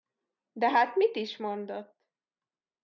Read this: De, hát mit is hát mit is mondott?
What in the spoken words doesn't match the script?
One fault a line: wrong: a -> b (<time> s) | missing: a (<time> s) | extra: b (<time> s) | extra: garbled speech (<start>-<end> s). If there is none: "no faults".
missing: hát mit is (1.4 s)